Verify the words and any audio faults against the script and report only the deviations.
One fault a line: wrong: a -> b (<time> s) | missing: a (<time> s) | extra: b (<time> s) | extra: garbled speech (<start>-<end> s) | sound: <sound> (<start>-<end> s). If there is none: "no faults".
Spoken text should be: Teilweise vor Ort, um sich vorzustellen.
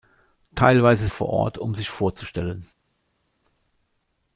no faults